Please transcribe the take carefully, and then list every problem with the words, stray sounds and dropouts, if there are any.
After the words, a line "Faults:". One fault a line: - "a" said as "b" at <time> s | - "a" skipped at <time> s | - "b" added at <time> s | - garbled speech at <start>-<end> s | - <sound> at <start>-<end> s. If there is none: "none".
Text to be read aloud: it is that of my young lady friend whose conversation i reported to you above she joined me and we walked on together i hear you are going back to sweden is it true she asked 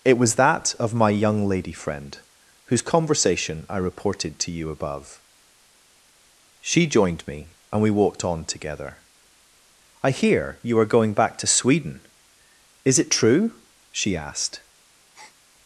it was that of my young lady friend whose conversation i reported to you above she joined me and we walked on together i hear you are going back to sweden is it true she asked
Faults:
- "is" said as "was" at 0.2 s
- breath at 15.1-15.4 s